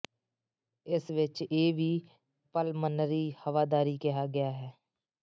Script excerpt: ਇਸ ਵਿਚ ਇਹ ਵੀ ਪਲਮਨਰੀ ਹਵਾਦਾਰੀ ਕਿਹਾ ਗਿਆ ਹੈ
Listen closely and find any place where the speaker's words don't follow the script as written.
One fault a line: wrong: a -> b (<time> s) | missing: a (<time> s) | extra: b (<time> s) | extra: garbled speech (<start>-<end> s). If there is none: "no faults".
no faults